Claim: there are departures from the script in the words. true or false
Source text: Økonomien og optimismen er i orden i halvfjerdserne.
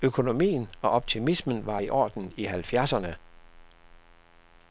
true